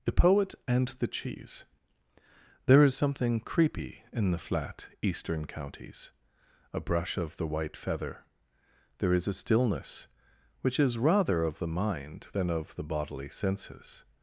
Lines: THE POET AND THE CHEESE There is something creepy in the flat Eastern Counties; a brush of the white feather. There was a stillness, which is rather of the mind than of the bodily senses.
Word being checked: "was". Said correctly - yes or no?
no